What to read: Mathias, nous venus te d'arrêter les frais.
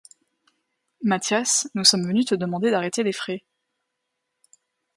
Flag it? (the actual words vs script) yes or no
yes